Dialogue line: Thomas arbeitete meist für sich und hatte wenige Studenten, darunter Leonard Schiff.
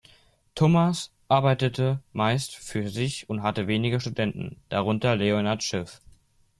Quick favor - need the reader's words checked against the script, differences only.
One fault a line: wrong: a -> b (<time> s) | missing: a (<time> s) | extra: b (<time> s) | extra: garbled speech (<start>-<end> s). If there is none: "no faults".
no faults